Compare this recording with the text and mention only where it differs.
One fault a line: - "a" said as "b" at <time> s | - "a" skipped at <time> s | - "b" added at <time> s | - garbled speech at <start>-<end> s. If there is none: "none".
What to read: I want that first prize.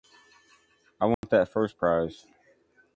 none